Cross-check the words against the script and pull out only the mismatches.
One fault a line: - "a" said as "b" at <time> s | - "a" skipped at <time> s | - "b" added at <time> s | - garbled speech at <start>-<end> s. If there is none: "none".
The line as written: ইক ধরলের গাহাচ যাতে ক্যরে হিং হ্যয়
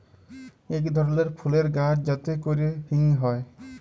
- "ফুলের" added at 1.4 s